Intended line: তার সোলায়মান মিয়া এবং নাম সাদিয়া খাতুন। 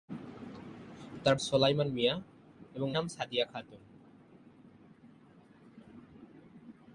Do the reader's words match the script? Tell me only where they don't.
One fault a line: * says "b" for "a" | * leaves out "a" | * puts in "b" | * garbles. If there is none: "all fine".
all fine